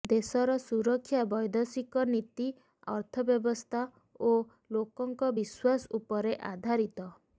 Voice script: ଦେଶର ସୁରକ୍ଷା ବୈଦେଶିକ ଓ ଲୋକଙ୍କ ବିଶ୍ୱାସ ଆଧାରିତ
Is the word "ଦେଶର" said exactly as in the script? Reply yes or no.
yes